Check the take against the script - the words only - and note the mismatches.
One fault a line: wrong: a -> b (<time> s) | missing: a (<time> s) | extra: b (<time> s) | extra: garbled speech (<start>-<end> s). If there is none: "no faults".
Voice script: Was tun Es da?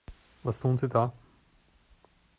wrong: Es -> Sie (0.8 s)